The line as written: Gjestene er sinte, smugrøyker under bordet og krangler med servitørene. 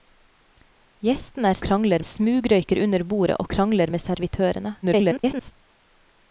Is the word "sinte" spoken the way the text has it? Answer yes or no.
no